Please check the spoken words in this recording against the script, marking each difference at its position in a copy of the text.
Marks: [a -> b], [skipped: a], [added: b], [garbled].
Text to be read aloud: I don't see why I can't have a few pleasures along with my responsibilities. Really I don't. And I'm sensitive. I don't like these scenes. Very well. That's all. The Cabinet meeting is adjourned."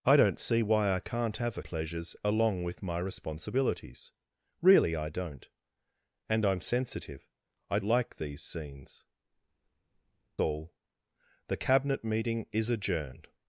I don't see why I can't have a [skipped: few] pleasures along with my responsibilities. Really I don't. And I'm sensitive. I [skipped: don't] like these scenes. [skipped: Very well. That's] all. The Cabinet meeting is adjourned."